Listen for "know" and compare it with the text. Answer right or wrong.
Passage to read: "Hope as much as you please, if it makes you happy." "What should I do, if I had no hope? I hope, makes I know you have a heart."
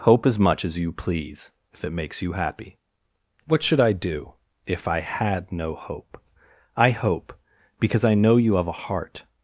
right